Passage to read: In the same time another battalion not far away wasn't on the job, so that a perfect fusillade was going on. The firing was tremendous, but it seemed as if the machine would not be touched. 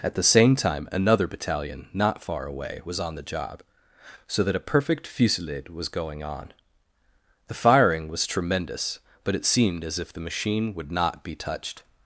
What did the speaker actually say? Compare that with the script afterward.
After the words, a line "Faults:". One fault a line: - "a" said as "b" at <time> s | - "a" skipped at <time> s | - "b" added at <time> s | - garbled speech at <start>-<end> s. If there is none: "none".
At the same time another battalion not far away was on the job, so that a perfect fusillade was going on. The firing was tremendous, but it seemed as if the machine would not be touched.
Faults:
- "In" said as "At" at 0.0 s
- "wasn't" said as "was" at 2.8 s